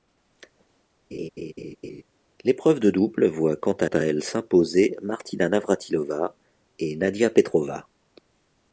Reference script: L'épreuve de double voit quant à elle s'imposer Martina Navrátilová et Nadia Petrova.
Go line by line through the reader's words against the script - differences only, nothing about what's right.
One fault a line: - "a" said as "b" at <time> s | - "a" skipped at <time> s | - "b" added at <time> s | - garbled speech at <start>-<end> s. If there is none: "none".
- "à" added at 3.8 s